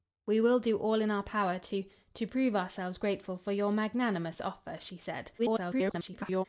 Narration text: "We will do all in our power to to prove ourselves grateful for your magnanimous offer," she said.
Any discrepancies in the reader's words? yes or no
yes